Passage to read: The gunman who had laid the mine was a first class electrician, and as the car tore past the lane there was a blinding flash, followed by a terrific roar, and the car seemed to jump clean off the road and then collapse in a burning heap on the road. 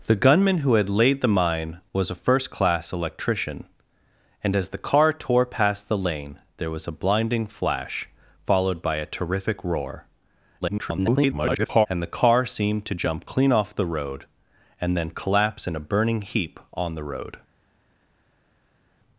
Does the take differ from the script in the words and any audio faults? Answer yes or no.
yes